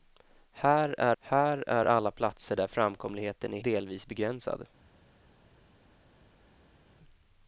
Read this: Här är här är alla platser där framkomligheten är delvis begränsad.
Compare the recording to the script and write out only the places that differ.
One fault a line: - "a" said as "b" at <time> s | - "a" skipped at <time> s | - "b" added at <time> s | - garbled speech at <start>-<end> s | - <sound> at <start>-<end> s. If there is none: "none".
none